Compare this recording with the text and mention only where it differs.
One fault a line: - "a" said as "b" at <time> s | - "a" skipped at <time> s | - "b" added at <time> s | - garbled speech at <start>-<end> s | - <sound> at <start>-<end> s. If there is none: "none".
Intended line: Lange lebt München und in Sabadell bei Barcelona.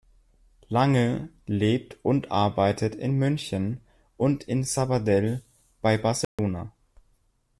- "und arbeitet in" added at 2.1 s
- dropout at 6.2-6.4 s